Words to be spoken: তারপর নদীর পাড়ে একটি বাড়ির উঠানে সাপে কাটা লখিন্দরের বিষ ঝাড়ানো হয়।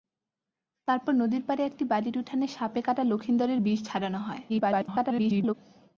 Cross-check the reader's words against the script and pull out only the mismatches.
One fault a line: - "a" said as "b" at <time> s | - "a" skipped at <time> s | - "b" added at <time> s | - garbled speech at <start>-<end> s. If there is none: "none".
- garbled speech at 4.5-5.5 s